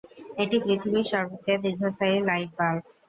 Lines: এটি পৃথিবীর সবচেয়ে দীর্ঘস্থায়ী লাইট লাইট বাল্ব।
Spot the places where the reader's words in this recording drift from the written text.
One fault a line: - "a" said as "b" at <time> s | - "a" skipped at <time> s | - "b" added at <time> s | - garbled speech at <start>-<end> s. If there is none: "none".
- "লাইট" skipped at 2.5 s